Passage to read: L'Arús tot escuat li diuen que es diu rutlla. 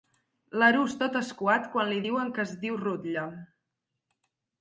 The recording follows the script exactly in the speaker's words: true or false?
false